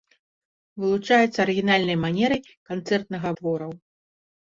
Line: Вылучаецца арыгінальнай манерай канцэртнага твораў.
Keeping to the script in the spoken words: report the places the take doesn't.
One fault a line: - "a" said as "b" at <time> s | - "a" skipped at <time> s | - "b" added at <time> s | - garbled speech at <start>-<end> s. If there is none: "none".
none